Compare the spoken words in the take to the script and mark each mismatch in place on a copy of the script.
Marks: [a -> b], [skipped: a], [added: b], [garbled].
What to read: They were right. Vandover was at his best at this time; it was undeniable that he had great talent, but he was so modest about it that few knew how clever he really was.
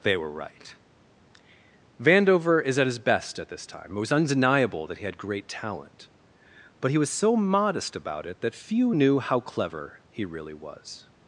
They were right. Vandover [was -> is] at his best at this time; it was undeniable that he had great talent, but he was so modest about it that few knew how clever he really was.